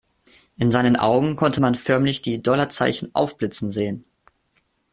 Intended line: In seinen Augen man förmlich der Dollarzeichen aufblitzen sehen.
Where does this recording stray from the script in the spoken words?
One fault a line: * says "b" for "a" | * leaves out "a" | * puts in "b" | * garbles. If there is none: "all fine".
* puts in "konnte"
* says "die" for "der"